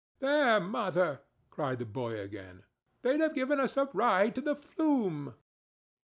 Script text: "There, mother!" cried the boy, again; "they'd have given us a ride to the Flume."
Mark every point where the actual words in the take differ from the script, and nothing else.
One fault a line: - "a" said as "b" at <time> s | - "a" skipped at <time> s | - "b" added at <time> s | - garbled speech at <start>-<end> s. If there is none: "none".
none